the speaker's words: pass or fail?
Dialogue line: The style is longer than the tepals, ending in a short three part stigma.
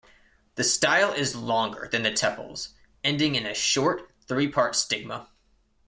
pass